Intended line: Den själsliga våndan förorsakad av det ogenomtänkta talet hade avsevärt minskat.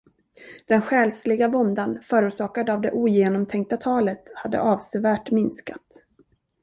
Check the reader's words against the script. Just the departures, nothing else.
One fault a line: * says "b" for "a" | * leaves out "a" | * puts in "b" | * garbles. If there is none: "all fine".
all fine